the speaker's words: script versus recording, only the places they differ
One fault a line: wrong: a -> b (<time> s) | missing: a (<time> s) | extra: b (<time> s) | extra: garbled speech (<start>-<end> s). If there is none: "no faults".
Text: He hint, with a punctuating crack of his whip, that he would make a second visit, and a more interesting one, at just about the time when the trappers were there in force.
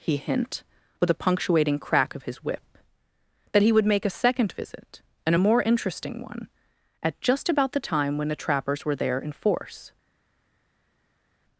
no faults